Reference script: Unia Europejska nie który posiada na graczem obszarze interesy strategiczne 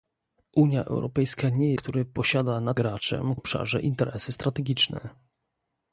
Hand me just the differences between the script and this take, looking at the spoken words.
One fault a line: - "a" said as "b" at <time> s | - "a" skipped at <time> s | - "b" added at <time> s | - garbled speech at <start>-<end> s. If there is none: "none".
none